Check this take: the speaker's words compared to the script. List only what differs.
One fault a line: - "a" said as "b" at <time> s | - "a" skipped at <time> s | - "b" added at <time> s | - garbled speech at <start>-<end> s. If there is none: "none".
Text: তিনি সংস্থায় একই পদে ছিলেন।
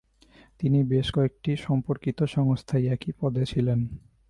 - "বেশ কয়েকটি সম্পর্কিত" added at 0.8 s